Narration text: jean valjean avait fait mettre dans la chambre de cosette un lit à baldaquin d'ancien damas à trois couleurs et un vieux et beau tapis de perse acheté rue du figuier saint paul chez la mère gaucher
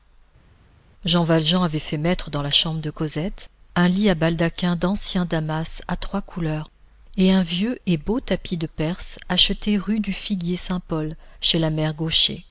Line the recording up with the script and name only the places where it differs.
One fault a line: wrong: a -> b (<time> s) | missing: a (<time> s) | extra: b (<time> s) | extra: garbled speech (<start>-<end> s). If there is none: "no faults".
no faults